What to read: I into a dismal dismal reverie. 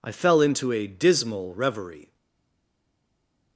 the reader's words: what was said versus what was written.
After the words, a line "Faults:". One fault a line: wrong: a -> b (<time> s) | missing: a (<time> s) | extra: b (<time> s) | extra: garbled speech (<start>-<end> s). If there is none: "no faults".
I fell into a dismal reverie.
Faults:
extra: fell (0.1 s)
missing: dismal (1.5 s)